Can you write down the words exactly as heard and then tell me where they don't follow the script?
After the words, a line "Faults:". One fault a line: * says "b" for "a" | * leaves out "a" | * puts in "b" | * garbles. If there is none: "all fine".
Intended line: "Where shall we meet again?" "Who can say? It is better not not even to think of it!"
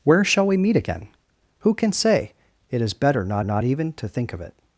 "Where shall we meet again?" "Who can say? It is better not not even to think of it!"
Faults:
all fine